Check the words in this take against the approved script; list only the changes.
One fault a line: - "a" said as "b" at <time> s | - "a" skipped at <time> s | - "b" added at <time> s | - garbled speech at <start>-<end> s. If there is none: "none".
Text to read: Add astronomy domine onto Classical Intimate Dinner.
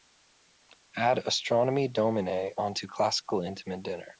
none